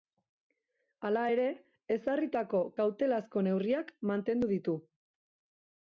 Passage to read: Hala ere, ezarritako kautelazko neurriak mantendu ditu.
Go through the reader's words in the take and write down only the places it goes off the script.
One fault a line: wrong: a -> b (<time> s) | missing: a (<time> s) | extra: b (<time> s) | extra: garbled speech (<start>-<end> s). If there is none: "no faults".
no faults